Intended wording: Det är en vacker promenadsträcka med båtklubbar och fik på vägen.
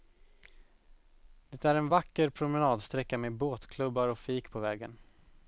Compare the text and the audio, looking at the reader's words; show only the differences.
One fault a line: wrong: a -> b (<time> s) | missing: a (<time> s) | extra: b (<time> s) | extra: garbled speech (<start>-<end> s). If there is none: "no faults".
no faults